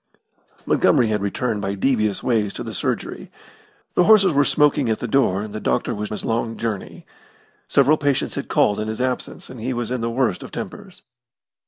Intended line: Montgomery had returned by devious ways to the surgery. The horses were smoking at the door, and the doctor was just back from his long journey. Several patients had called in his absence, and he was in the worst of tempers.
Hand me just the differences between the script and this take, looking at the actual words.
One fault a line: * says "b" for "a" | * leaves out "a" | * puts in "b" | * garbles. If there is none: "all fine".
* leaves out "just back from"